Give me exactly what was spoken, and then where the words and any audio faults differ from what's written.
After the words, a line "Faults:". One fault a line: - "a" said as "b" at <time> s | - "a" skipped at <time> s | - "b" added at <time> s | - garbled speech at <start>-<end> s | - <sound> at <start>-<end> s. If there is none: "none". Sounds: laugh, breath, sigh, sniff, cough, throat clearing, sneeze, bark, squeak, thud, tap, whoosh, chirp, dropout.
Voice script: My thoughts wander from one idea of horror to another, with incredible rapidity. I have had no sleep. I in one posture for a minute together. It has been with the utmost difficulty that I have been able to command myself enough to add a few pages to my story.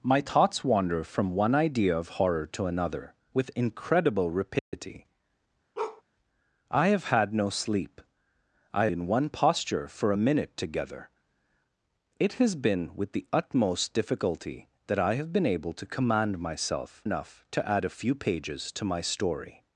My thoughts wander from one idea of horror to another, with incredible rapidity. I have had no sleep. I in one posture for a minute together. It has been with the utmost difficulty that I have been able to command myself enough to add a few pages to my story.
Faults:
- dropout at 4.6-4.7 s
- bark at 5.8-6.0 s